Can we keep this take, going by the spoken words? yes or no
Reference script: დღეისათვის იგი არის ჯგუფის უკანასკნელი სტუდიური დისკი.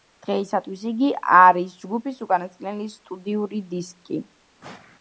yes